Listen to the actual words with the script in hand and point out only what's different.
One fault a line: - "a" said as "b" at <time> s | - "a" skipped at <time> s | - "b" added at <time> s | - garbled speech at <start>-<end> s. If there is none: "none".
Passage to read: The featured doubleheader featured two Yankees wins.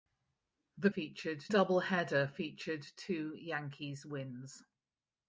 none